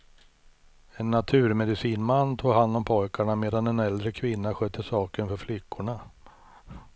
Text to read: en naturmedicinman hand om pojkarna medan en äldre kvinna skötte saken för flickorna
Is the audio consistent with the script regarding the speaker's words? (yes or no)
no